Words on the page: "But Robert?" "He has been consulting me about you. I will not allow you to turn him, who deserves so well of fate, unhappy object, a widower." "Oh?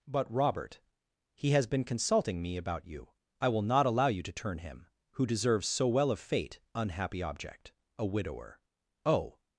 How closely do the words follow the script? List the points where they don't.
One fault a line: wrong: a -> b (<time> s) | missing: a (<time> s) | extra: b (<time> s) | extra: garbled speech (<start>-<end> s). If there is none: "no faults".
no faults